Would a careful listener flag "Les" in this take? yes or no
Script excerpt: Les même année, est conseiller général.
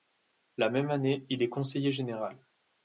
yes